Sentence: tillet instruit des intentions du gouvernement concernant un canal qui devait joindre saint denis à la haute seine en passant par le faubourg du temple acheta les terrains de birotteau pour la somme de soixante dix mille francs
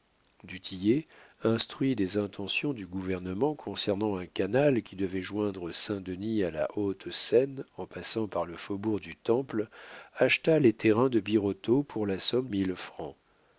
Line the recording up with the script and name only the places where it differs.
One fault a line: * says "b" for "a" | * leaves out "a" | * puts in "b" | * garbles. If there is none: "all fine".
* leaves out "de soixante dix"